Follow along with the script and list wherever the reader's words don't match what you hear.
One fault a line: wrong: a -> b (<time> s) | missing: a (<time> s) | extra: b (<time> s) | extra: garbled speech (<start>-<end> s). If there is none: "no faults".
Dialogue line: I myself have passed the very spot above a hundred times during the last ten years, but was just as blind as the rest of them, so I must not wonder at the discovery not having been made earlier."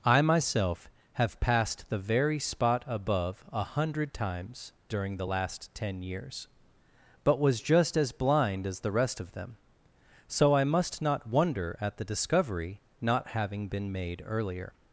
no faults